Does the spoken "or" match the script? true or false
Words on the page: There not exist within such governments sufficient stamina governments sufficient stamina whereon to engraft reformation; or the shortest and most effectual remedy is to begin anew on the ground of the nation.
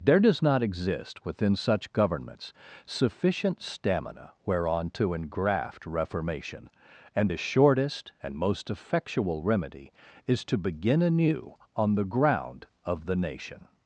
false